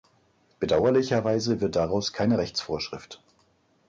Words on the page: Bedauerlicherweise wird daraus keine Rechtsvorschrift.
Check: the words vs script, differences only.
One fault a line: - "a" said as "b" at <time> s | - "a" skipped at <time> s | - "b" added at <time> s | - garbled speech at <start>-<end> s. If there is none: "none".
none